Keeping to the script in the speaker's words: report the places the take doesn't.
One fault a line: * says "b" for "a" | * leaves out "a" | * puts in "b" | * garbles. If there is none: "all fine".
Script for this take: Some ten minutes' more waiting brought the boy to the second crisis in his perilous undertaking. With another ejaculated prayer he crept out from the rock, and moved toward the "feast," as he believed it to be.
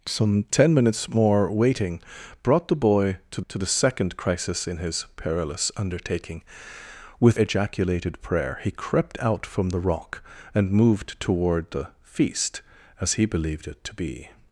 * puts in "to"
* leaves out "another"